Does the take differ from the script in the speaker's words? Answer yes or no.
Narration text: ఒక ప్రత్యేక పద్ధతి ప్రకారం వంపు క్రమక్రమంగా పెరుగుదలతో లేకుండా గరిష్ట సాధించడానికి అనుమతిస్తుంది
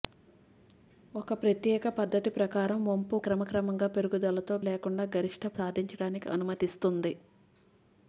no